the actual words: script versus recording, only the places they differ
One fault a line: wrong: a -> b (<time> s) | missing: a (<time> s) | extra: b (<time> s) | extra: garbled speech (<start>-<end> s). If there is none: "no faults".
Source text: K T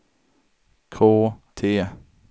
no faults